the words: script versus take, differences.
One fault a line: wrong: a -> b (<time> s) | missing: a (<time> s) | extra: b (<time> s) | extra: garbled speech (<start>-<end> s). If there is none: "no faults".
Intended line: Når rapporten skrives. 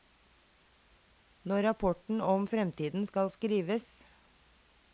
extra: om fremtiden skal (2.2 s)